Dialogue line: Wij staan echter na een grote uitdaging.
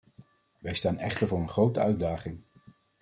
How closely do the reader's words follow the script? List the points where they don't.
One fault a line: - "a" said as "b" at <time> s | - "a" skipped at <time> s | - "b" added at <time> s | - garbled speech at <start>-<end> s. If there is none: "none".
- "na" said as "voor" at 1.2 s